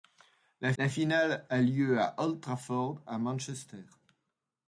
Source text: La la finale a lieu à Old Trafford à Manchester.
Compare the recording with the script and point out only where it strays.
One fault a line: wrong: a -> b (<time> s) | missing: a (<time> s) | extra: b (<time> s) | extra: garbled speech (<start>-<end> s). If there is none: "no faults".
no faults